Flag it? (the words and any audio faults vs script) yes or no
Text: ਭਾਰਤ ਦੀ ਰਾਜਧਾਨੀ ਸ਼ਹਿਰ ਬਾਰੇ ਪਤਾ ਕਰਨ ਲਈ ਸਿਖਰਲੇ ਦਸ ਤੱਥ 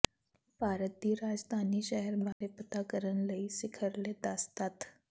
yes